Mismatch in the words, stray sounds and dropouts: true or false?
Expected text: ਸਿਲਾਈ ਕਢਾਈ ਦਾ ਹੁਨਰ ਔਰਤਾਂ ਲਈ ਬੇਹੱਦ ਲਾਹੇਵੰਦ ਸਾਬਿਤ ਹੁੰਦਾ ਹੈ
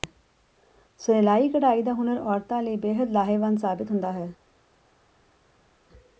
false